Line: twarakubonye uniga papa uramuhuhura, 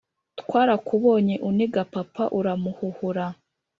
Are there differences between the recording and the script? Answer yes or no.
no